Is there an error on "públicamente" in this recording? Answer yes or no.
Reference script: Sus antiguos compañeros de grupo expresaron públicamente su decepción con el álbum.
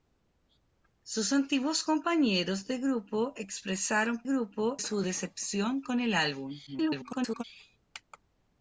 yes